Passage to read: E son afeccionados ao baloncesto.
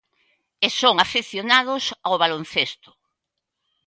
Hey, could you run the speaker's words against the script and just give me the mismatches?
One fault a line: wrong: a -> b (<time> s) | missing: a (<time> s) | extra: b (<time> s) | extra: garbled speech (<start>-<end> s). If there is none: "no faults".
no faults